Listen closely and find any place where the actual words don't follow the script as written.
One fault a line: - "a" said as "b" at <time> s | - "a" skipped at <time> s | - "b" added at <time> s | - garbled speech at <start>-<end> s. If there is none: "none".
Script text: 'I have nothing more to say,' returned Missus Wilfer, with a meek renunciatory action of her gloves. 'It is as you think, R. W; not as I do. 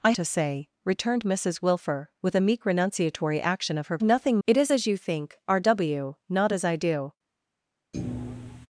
- "have nothing more" skipped at 0.1 s
- "gloves" said as "nothing" at 4.0 s